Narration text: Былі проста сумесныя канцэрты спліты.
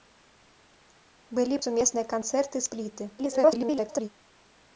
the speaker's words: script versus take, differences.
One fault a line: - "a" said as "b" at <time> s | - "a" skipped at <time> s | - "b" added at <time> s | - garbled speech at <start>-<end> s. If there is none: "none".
- "проста" skipped at 1.6 s
- garbled speech at 3.2-4.1 s